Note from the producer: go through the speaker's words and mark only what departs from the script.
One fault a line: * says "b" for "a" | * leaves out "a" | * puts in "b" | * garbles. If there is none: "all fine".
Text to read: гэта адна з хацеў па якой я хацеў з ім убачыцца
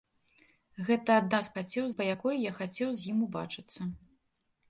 all fine